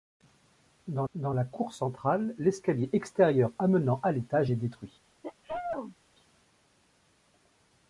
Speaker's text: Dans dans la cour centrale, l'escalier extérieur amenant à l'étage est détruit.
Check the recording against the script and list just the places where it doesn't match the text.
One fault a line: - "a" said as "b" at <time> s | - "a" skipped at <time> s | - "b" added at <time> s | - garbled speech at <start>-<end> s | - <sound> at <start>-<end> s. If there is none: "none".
- sneeze at 5.2-6.0 s